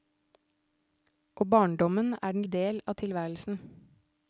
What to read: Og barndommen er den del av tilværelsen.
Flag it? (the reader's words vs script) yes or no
no